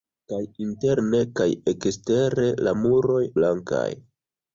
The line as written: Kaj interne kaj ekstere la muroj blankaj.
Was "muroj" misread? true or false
false